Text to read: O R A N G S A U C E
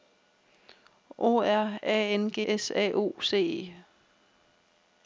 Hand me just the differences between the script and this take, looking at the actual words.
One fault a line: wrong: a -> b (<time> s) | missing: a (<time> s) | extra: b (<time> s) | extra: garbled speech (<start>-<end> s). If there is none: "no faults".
no faults